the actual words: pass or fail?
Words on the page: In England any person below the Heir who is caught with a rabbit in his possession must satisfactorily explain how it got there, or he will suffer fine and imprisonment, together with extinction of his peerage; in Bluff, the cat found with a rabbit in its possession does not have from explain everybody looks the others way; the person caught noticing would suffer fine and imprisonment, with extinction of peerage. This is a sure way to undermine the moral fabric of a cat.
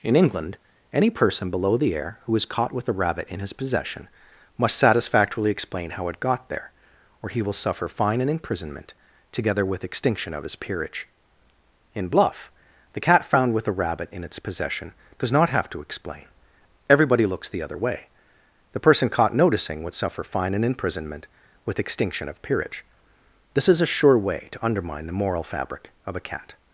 fail